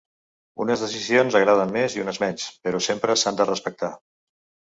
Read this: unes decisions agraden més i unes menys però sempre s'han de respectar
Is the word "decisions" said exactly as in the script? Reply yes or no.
yes